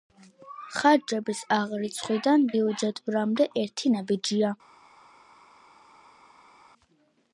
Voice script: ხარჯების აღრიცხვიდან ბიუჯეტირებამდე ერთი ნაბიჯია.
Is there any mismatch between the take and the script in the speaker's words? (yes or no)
no